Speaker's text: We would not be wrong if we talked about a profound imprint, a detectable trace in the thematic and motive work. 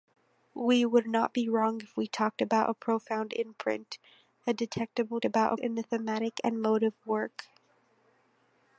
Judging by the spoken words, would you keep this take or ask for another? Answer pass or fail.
fail